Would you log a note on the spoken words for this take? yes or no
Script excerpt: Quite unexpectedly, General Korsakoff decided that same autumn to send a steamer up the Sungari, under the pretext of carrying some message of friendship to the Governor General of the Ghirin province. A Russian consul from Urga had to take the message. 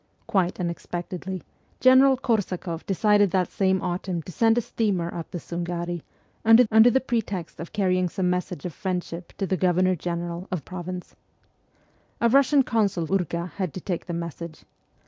yes